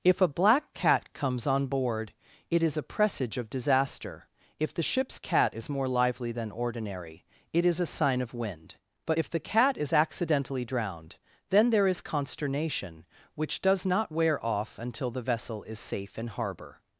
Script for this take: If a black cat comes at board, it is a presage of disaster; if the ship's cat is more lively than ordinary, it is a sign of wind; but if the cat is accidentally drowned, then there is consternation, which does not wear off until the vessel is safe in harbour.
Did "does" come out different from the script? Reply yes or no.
no